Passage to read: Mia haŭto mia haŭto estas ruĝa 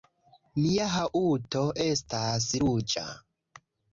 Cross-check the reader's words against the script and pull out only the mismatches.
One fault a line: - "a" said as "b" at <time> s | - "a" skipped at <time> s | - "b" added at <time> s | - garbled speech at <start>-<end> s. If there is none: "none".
- "mia haŭto" skipped at 1.6 s